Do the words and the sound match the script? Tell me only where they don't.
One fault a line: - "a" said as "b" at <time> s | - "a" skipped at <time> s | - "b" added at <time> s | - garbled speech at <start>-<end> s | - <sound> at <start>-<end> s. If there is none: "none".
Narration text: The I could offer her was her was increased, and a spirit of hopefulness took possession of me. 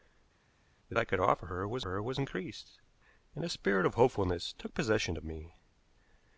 none